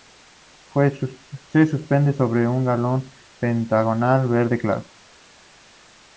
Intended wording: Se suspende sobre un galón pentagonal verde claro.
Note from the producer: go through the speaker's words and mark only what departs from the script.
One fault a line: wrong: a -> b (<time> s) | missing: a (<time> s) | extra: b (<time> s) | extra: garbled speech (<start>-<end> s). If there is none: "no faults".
no faults